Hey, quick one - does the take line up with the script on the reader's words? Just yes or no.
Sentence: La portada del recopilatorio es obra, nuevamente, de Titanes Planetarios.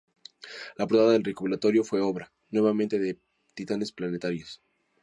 no